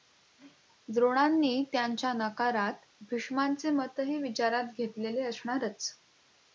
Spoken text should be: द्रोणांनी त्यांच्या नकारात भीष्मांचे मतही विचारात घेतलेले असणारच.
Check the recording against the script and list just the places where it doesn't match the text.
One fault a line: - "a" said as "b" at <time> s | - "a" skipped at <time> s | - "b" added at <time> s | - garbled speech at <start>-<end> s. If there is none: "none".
none